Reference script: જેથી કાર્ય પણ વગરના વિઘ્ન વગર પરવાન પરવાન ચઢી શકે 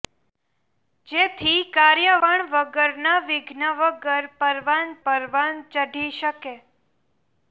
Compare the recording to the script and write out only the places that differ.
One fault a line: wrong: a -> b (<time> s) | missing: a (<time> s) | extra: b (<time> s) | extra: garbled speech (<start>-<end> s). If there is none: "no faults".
no faults